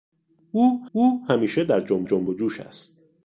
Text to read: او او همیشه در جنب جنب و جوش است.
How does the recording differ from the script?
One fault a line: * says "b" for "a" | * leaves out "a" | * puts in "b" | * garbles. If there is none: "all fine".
all fine